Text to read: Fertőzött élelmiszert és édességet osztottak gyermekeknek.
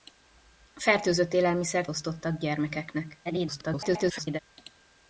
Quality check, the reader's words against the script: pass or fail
fail